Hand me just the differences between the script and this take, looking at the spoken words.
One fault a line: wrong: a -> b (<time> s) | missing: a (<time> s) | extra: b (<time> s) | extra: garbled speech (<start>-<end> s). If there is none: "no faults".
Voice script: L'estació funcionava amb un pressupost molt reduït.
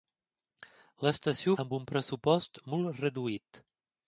missing: funcionava (1.5 s)